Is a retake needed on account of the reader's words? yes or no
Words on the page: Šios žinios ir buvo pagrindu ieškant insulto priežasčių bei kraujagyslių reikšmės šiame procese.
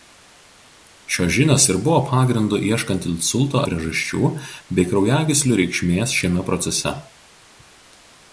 no